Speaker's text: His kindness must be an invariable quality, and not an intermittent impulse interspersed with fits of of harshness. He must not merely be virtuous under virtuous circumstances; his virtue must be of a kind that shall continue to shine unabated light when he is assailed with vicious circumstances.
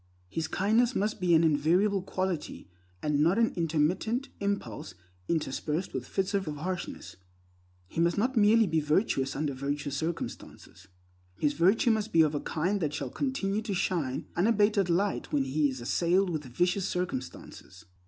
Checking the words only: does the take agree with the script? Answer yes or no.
yes